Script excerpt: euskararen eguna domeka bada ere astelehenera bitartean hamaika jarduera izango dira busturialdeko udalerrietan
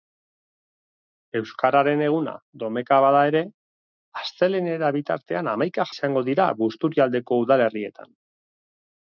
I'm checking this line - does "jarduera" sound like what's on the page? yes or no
no